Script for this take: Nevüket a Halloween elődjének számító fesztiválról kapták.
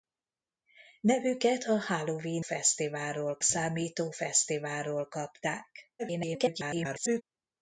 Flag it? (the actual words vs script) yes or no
yes